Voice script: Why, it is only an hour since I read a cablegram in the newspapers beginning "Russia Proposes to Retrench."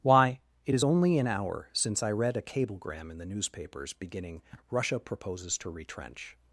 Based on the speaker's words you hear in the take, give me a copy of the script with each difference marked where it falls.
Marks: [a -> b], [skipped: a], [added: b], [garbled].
Why, it is only an hour since I read a cablegram in the newspapers beginning "Russia Proposes to Retrench."